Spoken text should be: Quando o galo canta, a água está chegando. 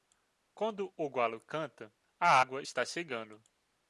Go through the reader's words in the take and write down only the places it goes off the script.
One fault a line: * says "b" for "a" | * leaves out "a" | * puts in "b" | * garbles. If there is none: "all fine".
all fine